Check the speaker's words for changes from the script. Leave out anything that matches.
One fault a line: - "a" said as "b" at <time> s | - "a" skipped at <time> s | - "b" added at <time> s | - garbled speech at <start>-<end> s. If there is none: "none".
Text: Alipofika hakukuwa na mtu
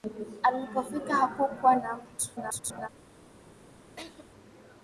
- garbled speech at 2.4-2.9 s